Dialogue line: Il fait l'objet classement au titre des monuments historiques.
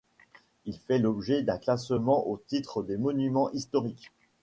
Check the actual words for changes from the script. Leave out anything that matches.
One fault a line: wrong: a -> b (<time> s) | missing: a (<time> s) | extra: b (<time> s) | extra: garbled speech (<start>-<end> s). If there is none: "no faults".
extra: d'un (1.4 s)